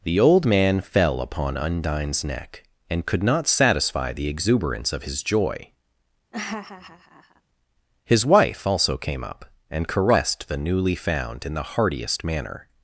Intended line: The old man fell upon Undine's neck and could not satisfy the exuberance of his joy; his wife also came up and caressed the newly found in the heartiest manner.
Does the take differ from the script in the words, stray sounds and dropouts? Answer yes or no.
yes